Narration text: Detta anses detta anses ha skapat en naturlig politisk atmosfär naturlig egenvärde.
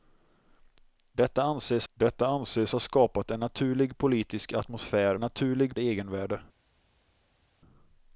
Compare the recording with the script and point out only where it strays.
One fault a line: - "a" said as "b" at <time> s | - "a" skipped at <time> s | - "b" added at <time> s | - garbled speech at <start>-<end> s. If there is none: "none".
none